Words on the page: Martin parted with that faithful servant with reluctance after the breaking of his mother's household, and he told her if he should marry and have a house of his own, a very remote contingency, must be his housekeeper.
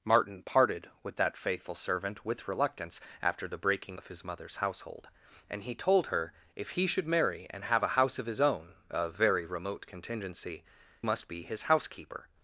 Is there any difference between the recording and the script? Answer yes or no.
no